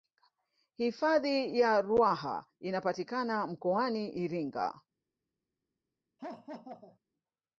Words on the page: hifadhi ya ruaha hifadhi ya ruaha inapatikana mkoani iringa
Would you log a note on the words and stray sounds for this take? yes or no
yes